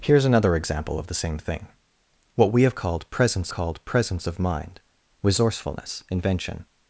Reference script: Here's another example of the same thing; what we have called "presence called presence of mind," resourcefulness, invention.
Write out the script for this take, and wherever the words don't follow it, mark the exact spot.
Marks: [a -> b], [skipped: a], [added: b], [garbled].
Here's another example of the same thing; what we have called "presence called presence of mind," resourcefulness, invention.